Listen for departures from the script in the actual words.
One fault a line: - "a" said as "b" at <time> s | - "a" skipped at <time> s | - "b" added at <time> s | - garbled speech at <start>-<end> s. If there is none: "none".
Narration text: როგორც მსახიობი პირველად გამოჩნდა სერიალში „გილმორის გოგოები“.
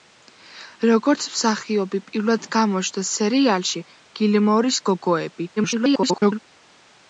- garbled speech at 5.6-6.4 s